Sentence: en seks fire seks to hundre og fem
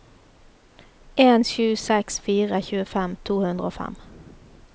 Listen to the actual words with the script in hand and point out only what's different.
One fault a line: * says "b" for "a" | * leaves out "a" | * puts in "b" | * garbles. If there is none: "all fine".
* puts in "sju"
* says "tjuefem" for "seks"